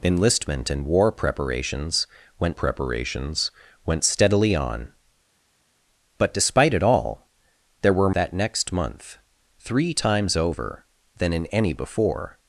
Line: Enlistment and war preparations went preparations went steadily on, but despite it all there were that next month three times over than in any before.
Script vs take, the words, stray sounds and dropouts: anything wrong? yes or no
no